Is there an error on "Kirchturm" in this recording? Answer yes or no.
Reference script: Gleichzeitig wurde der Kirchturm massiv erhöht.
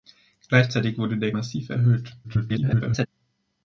yes